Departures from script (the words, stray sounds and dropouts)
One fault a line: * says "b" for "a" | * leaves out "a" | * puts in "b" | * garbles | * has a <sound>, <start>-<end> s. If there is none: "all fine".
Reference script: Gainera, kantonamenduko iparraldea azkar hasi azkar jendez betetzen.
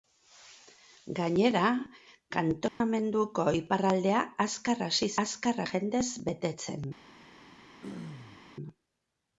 * has a dropout, 2.7-2.8 s
* has a throat clearing, 7.8-8.4 s